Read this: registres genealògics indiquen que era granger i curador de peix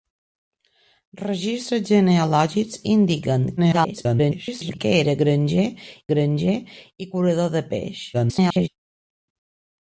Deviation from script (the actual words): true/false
true